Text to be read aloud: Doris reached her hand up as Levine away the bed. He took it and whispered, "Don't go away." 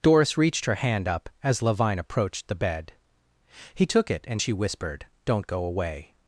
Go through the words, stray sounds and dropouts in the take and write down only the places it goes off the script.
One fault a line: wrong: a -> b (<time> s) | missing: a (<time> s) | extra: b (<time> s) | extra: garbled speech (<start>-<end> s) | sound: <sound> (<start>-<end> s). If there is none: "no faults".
wrong: away -> approached (2.0 s)
extra: she (4.4 s)